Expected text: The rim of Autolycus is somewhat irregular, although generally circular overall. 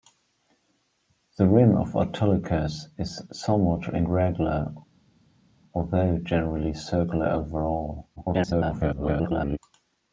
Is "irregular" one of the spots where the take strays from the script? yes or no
no